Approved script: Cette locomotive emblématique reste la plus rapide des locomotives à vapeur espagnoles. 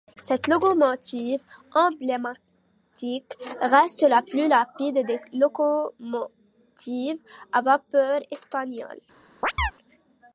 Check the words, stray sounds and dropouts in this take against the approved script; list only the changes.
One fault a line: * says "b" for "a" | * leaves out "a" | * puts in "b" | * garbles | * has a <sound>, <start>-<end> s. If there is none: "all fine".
* has a chirp, 9.4-9.7 s